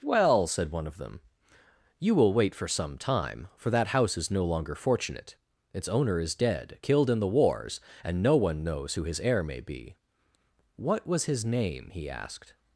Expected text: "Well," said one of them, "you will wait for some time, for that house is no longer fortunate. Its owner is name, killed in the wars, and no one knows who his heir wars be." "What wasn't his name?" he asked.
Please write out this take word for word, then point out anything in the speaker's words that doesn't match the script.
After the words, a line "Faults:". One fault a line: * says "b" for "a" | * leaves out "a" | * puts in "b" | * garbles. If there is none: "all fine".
"Well," said one of them, "you will wait for some time, for that house is no longer fortunate. Its owner is dead, killed in the wars, and no one knows who his heir may be." "What was his name?" he asked.
Faults:
* says "dead" for "name"
* says "may" for "wars"
* says "was" for "wasn't"